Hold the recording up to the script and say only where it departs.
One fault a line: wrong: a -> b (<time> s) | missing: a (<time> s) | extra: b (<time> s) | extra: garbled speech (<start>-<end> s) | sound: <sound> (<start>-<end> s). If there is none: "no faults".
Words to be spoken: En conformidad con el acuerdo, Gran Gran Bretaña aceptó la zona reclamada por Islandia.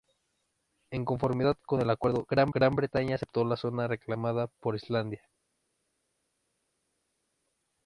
no faults